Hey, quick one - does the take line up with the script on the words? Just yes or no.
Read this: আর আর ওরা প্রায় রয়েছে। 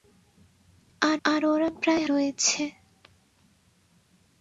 yes